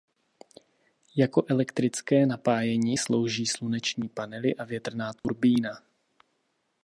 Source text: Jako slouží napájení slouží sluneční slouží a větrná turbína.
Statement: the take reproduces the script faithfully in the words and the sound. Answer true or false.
false